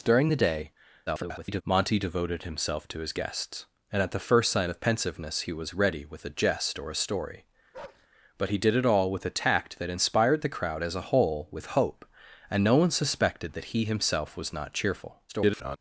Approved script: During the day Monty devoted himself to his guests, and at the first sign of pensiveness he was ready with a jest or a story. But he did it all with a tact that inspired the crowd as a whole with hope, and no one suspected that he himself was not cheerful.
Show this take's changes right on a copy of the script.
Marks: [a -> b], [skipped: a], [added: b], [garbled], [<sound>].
During the day [garbled] Monty devoted himself to his guests, and at the first sign of pensiveness he was ready with a jest or a story. [bark] But he did it all with a tact that inspired the crowd as a whole with hope, and no one suspected that he himself was not cheerful. [garbled]